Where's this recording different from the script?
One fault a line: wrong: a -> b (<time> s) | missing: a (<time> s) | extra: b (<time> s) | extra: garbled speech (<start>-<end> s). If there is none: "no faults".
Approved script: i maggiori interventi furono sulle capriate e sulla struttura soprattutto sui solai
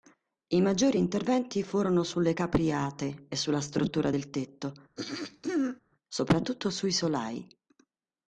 extra: del tetto (4.1 s)